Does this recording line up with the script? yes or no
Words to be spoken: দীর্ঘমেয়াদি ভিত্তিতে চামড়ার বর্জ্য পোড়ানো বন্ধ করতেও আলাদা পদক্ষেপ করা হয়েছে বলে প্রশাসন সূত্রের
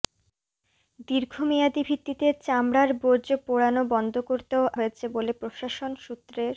no